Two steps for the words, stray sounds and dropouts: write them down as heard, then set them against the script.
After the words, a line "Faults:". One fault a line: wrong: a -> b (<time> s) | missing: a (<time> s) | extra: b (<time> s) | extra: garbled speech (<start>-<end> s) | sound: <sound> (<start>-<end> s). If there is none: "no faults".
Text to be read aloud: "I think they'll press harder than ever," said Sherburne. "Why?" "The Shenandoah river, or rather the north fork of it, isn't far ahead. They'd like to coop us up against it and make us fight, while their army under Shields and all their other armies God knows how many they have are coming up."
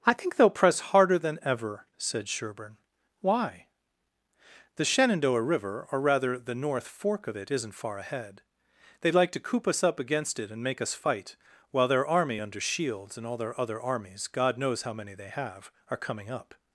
"I think they'll press harder than ever," said Sherburne. "Why?" "The Shenandoah river, or rather the north fork of it, isn't far ahead. They'd like to coop us up against it and make us fight, while their army under Shields and all their other armies God knows how many they have are coming up."
Faults:
no faults